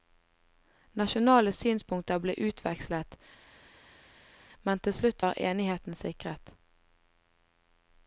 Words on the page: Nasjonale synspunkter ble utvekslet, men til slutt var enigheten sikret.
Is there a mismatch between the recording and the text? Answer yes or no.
no